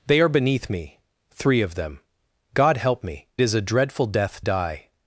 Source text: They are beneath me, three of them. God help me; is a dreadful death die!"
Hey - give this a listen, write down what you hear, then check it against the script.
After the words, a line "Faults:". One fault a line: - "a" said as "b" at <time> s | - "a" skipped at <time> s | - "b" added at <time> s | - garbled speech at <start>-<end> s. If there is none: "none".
They are beneath me, three of them. God help me; is a dreadful death die!"
Faults:
none